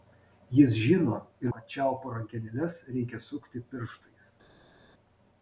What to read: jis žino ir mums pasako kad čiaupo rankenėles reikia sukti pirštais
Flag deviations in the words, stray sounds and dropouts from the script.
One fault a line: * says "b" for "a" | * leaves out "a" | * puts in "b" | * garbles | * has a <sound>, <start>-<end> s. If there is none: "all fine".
* leaves out "mums pasako"